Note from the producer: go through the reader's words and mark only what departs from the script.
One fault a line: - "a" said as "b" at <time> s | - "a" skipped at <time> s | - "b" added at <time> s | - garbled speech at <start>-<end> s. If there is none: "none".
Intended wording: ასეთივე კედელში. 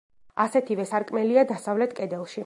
- "სარკმელია დასავლეთ" added at 0.9 s